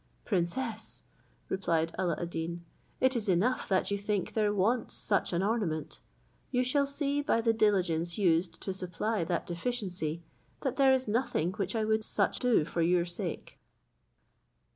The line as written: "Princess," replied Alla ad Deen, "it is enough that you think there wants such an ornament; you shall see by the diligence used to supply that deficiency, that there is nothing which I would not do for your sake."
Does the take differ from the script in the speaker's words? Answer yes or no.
yes